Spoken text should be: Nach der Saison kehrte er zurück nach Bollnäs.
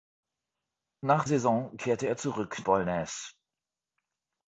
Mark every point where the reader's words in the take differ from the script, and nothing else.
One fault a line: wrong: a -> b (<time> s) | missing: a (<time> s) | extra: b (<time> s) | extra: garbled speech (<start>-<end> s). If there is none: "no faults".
missing: der (1.2 s)
missing: nach (2.6 s)